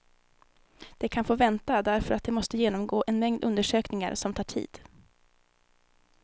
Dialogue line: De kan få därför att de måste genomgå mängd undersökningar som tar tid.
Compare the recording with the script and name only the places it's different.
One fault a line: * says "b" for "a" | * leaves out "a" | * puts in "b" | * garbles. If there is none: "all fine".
* puts in "vänta"
* puts in "en"